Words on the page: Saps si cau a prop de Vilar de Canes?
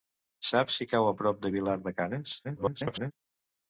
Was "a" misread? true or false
false